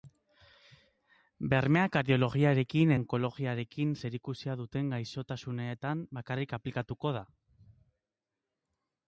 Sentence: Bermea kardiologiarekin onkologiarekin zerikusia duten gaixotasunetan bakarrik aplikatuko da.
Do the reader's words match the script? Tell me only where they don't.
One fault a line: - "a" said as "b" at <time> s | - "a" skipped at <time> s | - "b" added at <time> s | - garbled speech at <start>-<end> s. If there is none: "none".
none